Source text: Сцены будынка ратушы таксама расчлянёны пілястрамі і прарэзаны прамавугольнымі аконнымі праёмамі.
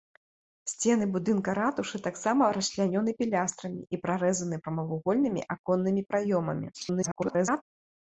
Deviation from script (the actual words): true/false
true